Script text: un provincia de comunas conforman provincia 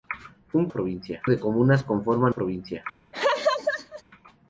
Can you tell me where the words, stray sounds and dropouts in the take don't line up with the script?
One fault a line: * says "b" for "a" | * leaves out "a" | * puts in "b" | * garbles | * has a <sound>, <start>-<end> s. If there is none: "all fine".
* has a laugh, 3.1-4.0 s